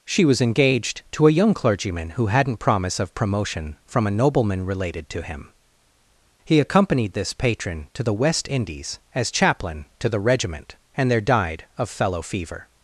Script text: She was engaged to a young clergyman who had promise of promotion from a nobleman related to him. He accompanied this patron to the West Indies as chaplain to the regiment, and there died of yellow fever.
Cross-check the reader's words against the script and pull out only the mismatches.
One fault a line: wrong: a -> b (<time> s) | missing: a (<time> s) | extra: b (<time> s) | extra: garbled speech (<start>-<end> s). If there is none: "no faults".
wrong: had -> hadn't (2.3 s)
wrong: yellow -> fellow (11.9 s)